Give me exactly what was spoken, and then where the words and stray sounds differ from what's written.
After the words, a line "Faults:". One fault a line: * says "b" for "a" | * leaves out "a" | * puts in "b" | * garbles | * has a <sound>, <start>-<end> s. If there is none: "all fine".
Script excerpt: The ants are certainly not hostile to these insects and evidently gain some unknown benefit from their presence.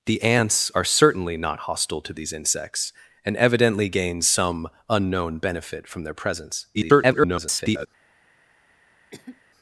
The ants are certainly not hostile to these insects and evidently gain some unknown benefit from their presence. [garbled]
Faults:
* garbles
* has a cough, 9.1-9.4 s